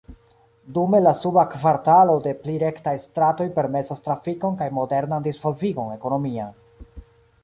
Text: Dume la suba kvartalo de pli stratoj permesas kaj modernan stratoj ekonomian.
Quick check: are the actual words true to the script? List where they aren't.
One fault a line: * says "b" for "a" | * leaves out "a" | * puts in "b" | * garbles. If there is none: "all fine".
* puts in "rektaj"
* puts in "trafikon"
* says "disvolvigon" for "stratoj"